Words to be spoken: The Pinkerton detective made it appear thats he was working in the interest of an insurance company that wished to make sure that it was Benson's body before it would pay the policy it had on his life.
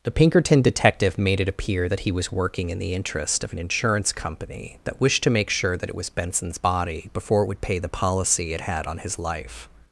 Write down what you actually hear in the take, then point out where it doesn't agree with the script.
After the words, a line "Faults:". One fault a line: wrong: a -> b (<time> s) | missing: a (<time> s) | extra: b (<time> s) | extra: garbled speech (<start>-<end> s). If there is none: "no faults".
The Pinkerton detective made it appear that he was working in the interest of an insurance company that wished to make sure that it was Benson's body before it would pay the policy it had on his life.
Faults:
wrong: thats -> that (1.9 s)